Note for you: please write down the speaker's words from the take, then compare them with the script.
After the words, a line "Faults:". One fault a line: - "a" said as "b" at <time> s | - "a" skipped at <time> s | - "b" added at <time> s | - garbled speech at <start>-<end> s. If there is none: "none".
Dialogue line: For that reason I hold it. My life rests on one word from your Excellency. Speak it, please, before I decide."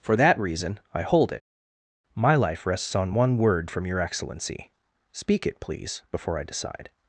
For that reason I hold it. My life rests on one word from your Excellency. Speak it, please, before I decide."
Faults:
none